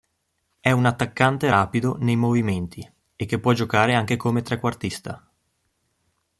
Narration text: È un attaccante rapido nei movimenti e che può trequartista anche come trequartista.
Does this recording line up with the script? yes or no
no